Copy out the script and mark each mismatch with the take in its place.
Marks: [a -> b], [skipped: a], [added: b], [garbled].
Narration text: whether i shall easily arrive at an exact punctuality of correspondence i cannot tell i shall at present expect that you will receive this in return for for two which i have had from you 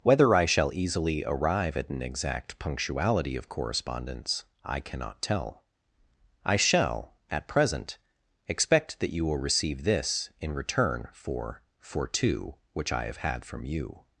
whether i shall easily arrive at an exact punctuality of correspondence i cannot tell i shall at present expect that you will receive this in return for for two which i have had from you